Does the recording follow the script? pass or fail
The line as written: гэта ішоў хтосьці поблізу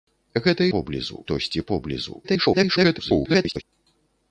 fail